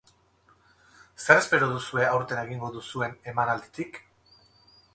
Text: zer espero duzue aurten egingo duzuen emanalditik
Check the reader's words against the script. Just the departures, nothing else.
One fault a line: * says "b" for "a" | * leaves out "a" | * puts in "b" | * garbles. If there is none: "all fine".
all fine